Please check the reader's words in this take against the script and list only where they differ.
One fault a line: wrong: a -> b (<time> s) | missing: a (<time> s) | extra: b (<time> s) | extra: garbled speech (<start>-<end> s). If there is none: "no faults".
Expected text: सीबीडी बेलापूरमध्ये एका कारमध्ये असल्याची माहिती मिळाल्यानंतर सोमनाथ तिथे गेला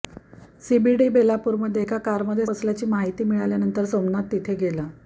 no faults